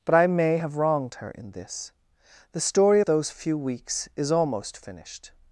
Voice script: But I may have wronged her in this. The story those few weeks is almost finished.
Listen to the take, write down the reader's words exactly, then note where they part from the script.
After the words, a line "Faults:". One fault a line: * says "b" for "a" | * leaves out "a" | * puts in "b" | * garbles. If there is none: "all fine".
But I may have wronged her in this. The story those few weeks is almost finished.
Faults:
all fine